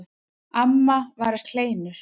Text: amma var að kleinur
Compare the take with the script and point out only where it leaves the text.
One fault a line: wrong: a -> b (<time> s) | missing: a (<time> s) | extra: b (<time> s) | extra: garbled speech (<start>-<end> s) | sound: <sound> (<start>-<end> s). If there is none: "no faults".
no faults